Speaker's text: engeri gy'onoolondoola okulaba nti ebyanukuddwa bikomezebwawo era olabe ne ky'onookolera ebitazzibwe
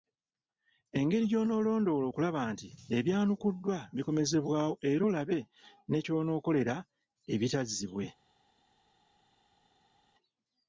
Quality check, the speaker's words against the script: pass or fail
pass